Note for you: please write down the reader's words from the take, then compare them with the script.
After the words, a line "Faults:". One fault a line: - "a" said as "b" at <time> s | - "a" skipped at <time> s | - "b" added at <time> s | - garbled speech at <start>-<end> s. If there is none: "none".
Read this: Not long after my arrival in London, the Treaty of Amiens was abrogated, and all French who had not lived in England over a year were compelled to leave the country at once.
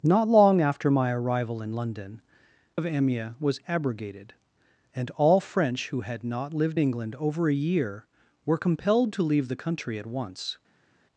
Not long after my arrival in London, of Amiens was abrogated, and all French who had not lived England over a year were compelled to leave the country at once.
Faults:
- "the Treaty" skipped at 2.2 s
- "in" skipped at 6.8 s